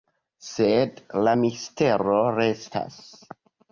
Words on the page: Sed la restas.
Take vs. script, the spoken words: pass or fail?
fail